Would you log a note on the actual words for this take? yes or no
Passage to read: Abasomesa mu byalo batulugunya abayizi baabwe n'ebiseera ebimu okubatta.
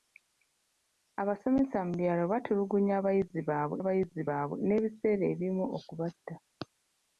yes